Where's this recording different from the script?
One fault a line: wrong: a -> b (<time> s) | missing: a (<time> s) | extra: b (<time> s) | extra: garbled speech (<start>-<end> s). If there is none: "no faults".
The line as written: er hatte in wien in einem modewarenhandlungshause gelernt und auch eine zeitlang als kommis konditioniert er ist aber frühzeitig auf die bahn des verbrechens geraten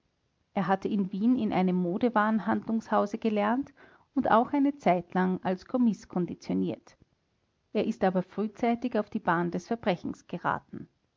no faults